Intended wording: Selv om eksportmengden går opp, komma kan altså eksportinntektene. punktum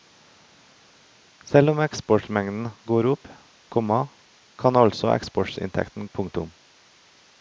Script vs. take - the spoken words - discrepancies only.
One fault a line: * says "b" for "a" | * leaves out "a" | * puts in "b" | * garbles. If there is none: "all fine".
all fine